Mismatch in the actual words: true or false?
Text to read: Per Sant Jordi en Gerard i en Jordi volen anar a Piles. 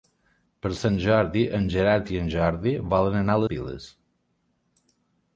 false